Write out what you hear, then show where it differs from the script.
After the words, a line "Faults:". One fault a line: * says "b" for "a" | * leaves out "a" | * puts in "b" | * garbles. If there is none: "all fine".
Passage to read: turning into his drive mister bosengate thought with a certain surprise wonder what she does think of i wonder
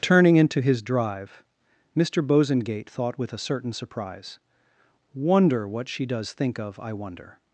turning into his drive mister bosengate thought with a certain surprise wonder what she does think of i wonder
Faults:
all fine